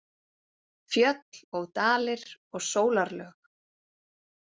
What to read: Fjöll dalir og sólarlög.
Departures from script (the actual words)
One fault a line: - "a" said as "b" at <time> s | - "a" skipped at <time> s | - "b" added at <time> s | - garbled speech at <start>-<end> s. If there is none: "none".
- "og" added at 1.6 s